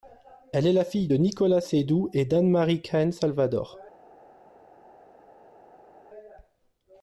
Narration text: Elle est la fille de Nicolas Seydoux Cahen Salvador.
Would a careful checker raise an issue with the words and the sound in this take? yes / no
yes